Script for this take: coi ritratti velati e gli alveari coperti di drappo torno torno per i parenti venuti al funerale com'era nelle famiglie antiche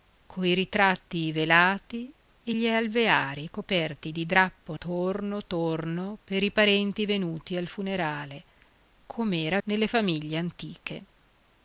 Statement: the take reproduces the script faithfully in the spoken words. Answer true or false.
true